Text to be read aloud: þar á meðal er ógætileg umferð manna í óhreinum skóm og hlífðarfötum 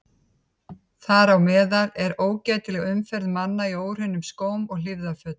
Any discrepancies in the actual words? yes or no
no